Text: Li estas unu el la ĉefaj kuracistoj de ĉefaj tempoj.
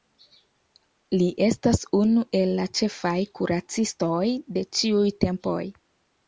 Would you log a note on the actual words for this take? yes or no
yes